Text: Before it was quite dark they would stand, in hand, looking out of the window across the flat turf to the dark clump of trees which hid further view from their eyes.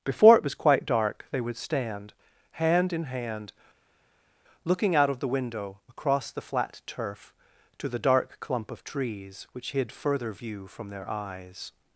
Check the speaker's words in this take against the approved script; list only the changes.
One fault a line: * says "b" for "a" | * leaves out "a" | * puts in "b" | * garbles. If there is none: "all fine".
* puts in "hand"